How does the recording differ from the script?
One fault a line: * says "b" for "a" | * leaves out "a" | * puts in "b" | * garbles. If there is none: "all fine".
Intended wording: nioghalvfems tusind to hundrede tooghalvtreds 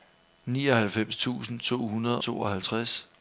all fine